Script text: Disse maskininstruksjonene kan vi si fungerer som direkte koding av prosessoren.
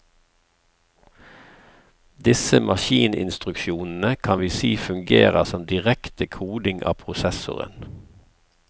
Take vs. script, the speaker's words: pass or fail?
pass